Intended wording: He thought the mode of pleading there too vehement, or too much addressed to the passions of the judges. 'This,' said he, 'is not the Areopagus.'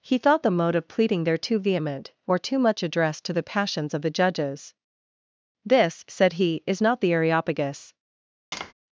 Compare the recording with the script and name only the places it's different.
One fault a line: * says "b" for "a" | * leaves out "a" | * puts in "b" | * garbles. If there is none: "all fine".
all fine